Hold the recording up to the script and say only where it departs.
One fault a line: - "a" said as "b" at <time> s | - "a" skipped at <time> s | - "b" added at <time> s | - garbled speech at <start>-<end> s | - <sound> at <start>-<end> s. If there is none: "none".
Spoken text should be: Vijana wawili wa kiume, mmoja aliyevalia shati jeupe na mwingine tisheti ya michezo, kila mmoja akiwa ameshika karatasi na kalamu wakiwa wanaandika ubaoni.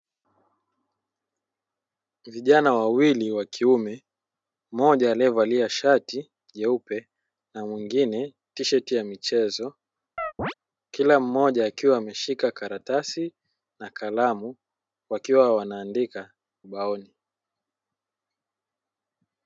- chirp at 10.2-10.5 s